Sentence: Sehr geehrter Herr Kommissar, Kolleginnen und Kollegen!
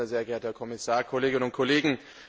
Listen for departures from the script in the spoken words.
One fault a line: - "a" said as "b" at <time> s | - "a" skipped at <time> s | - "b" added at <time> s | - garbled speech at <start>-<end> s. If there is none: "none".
none